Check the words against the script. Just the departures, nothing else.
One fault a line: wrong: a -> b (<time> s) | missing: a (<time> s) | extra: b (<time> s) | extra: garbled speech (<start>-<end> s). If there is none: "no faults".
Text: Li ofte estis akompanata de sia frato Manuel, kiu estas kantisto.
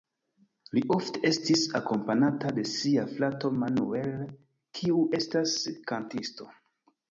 no faults